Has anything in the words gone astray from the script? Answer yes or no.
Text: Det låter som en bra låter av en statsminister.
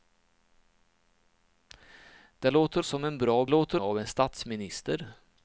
no